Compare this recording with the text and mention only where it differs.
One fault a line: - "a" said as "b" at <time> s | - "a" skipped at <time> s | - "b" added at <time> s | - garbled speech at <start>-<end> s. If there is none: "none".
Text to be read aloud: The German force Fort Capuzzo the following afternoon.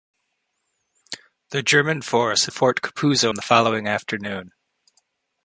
none